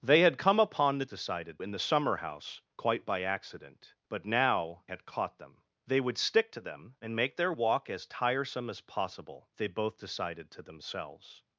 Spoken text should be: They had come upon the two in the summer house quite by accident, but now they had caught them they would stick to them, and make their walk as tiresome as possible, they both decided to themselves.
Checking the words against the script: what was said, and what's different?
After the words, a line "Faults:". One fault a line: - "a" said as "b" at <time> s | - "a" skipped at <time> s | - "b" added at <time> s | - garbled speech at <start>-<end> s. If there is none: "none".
They had come upon the decided in the summer house quite by accident, but now had caught them they would stick to them, and make their walk as tiresome as possible, they both decided to themselves.
Faults:
- "two" said as "decided" at 1.1 s
- "they" skipped at 4.8 s